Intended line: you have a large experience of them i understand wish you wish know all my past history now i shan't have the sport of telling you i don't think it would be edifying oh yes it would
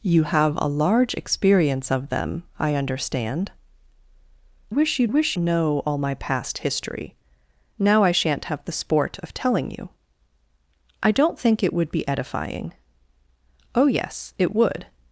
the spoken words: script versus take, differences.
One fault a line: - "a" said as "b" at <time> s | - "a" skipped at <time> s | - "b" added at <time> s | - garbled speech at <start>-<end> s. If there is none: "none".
none